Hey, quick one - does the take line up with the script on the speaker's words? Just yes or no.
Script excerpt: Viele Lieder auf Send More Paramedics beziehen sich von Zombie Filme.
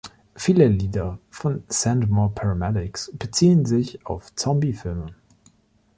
no